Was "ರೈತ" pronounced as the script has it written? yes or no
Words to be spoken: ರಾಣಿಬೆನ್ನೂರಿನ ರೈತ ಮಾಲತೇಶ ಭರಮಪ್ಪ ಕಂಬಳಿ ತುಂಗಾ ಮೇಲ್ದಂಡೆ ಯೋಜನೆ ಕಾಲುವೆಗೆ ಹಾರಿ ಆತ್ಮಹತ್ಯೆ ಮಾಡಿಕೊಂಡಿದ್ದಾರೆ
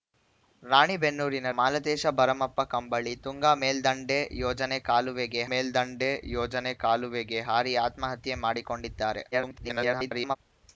no